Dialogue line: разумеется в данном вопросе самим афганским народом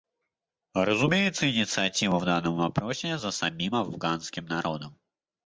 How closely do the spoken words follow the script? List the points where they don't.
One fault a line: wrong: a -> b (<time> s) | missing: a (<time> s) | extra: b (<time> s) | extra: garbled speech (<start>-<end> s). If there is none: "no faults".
extra: инициатива (1.5 s)
extra: за (3.2 s)